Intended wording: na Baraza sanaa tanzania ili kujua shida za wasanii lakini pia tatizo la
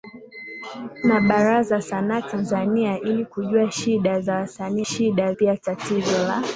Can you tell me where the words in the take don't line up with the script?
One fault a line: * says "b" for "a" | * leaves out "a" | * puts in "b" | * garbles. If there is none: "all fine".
* says "shida" for "lakini"